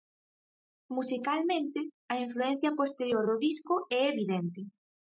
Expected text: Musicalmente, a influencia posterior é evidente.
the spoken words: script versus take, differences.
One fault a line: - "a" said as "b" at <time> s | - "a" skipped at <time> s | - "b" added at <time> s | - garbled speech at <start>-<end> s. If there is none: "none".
- "do disco" added at 3.2 s